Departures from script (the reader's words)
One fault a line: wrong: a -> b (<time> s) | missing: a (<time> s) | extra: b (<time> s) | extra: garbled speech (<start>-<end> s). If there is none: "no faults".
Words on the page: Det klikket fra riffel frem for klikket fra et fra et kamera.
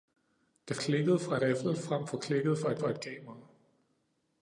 no faults